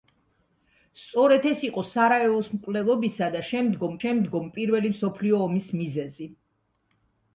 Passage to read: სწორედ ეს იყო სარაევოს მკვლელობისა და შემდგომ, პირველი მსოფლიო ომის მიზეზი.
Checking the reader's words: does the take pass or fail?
fail